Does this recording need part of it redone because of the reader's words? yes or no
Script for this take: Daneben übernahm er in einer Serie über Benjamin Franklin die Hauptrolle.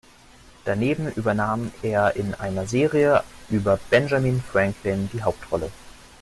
no